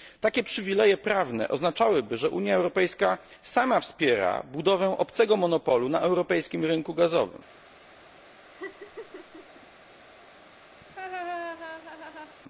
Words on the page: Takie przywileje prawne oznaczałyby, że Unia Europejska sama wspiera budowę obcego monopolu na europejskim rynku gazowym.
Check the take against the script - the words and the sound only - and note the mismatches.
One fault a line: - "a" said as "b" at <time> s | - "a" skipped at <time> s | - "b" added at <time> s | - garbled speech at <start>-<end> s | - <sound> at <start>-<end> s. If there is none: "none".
- laugh at 8.5-9.7 s
- laugh at 10.8-12.4 s